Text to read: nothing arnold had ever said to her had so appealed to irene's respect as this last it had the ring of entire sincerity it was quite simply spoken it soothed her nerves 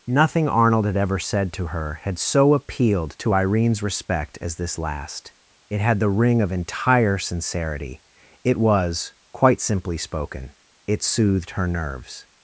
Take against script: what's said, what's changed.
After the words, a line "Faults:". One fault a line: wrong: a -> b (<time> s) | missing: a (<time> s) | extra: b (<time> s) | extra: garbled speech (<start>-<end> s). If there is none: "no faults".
nothing arnold had ever said to her had so appealed to irene's respect as this last it had the ring of entire sincerity it was quite simply spoken it soothed her nerves
Faults:
no faults